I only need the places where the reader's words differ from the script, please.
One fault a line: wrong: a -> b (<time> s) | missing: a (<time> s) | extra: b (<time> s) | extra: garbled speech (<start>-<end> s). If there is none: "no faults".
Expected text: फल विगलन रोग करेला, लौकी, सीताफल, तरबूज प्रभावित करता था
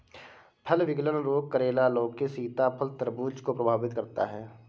extra: को (3.4 s)
wrong: था -> है (4.2 s)